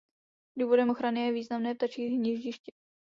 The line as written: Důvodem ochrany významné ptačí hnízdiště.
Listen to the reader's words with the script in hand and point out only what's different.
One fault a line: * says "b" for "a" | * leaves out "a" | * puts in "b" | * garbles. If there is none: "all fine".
* puts in "je"